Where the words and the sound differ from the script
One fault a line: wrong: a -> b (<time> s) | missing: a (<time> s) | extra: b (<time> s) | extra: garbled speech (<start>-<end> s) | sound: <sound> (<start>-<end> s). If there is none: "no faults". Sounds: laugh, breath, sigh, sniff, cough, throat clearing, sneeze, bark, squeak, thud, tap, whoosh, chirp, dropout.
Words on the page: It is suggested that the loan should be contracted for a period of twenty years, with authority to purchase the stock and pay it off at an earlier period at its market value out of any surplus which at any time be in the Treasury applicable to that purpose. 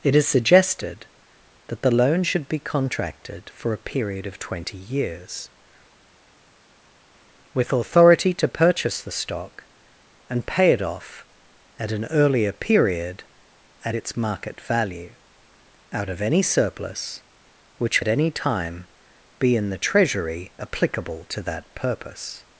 no faults